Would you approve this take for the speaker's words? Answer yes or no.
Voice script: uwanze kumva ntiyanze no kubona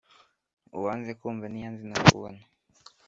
yes